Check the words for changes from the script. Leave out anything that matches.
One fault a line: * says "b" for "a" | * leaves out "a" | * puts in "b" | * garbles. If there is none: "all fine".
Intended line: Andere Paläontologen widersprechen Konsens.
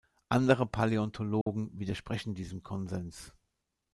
* puts in "diesem"